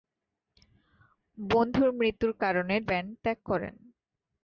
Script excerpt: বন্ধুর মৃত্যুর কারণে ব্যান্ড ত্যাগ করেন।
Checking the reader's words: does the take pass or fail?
pass